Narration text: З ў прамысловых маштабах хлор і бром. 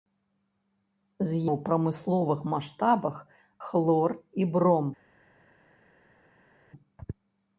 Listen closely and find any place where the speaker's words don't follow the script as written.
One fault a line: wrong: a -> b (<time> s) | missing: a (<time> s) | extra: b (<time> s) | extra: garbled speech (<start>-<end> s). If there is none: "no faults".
no faults